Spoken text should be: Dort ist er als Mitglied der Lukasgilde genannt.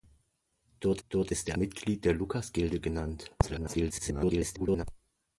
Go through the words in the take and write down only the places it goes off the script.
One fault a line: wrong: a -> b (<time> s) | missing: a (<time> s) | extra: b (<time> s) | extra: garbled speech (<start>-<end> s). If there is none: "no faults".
extra: dort (1.1 s)
missing: als (1.6 s)
extra: garbled speech (3.4-4.8 s)